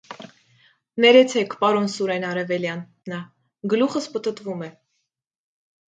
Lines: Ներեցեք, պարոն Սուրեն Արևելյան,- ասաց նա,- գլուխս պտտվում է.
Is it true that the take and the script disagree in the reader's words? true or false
true